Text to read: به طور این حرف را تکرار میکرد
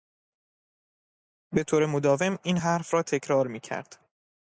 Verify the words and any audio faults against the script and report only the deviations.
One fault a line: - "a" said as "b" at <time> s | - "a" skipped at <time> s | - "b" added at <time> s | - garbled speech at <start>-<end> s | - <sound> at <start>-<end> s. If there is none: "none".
- "مداوم" added at 1.9 s